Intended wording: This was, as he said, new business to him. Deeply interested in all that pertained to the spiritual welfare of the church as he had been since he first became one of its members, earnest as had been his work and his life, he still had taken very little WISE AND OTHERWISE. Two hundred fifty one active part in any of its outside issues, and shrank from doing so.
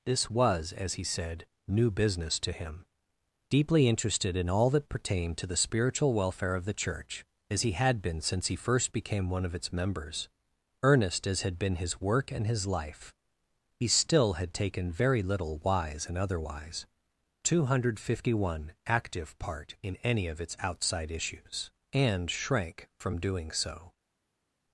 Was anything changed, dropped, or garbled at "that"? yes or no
no